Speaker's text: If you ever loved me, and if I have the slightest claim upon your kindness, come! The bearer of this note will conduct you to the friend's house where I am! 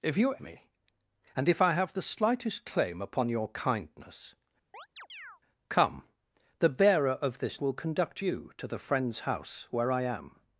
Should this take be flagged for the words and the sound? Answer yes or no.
yes